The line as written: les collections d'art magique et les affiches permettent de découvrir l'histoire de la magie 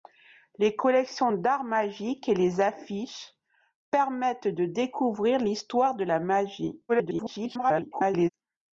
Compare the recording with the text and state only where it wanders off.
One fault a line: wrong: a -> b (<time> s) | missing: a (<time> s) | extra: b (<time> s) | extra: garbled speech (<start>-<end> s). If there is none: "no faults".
extra: garbled speech (6.9-8.3 s)